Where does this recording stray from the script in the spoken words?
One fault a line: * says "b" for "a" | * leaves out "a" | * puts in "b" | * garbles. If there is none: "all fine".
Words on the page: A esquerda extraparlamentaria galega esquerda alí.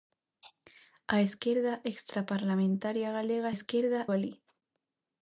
all fine